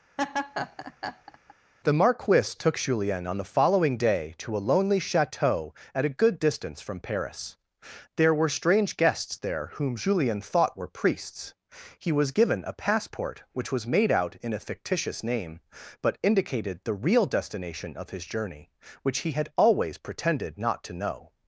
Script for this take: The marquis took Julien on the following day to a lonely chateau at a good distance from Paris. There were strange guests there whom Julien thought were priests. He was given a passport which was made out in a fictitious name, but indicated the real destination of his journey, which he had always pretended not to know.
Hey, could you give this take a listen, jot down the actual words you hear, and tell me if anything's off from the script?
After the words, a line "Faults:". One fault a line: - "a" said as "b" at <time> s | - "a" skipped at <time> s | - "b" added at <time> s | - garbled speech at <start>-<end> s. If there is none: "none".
The marquis took Julien on the following day to a lonely chateau at a good distance from Paris. There were strange guests there whom Julien thought were priests. He was given a passport which was made out in a fictitious name, but indicated the real destination of his journey, which he had always pretended not to know.
Faults:
none